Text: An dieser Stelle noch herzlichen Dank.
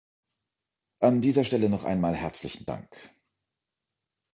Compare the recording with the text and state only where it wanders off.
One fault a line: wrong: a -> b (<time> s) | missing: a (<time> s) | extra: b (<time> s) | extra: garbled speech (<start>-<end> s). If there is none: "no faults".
extra: einmal (1.8 s)